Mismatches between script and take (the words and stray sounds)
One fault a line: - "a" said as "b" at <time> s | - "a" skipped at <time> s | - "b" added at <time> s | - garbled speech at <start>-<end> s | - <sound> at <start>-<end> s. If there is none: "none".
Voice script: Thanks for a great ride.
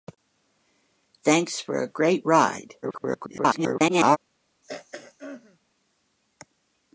- garbled speech at 2.8-4.2 s
- throat clearing at 4.6-5.6 s